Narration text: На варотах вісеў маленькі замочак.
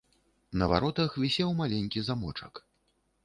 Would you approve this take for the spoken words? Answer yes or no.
yes